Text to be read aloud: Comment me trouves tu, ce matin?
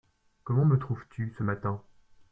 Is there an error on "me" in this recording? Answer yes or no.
no